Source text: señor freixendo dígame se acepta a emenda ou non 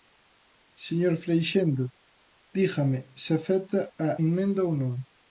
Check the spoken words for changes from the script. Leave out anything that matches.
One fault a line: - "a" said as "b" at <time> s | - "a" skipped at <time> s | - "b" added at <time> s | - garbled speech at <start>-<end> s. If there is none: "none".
none